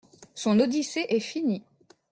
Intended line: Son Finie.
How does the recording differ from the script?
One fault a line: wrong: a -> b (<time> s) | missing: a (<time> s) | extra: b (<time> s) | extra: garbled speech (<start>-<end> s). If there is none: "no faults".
extra: Odyssée est (0.6 s)